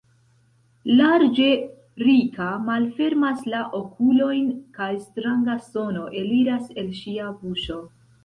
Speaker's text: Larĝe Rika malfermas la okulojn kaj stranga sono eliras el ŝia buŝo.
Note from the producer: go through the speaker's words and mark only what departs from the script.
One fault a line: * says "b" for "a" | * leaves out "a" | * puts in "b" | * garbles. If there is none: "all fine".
all fine